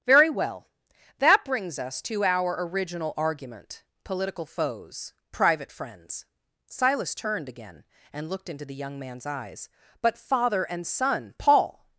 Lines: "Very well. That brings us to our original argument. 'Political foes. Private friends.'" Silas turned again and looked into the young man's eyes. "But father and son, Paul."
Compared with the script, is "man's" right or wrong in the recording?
right